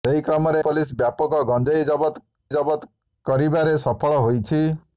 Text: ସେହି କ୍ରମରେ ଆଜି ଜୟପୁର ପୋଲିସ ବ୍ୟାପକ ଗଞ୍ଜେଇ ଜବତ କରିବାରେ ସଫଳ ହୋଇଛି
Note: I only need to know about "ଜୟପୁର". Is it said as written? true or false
false